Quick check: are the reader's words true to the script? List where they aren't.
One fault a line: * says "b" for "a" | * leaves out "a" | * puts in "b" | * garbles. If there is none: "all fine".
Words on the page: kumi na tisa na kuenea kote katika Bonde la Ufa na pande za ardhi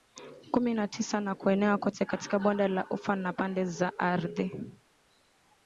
all fine